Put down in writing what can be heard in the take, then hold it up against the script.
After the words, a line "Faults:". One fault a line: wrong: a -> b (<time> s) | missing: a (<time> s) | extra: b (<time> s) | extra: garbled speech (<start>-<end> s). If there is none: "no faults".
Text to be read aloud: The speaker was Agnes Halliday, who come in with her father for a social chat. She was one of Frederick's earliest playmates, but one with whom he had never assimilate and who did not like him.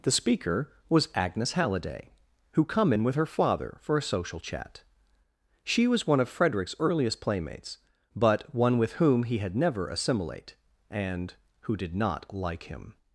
The speaker was Agnes Halliday, who come in with her father for a social chat. She was one of Frederick's earliest playmates, but one with whom he had never assimilate and who did not like him.
Faults:
no faults